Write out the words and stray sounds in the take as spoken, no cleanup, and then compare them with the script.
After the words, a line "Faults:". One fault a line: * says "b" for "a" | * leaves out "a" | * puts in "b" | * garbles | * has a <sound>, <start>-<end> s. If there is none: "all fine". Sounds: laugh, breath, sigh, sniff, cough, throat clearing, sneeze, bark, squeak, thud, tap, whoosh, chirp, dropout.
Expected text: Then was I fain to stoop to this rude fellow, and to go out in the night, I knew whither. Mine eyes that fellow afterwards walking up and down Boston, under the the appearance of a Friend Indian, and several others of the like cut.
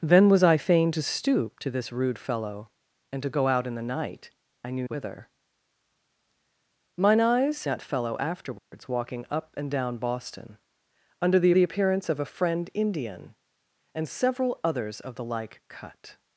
Then was I fain to stoop to this rude fellow, and to go out in the night, I knew whither. Mine eyes that fellow afterwards walking up and down Boston, under the the appearance of a Friend Indian, and several others of the like cut.
Faults:
* has a dropout, 8.6-8.7 s